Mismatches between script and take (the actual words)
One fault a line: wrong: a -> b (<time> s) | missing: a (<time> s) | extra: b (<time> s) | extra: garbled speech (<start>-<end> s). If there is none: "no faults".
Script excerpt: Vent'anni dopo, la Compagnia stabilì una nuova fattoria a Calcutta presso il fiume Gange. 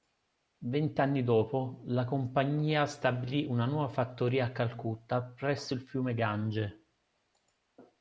no faults